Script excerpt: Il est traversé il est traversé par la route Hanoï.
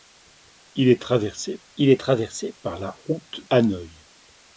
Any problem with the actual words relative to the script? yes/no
no